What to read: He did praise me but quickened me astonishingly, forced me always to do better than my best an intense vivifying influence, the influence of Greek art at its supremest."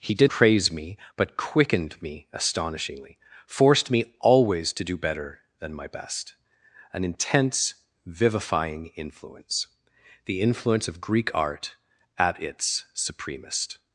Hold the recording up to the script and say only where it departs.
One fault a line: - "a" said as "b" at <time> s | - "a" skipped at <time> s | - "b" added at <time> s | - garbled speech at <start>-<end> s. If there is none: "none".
none